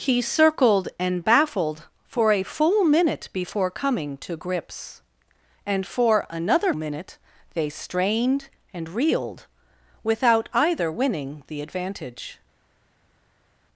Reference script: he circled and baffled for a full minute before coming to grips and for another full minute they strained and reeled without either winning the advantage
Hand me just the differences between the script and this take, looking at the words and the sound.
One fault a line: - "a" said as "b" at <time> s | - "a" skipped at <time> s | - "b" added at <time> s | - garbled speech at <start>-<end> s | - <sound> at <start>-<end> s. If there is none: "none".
- "full" skipped at 6.7 s